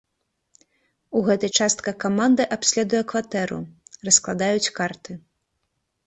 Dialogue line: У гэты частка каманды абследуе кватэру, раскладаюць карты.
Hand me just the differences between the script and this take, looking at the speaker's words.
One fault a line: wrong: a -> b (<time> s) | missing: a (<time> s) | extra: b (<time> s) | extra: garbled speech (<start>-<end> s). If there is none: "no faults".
no faults